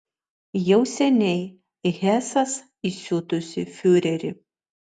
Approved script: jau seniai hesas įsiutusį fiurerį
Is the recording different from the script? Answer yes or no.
no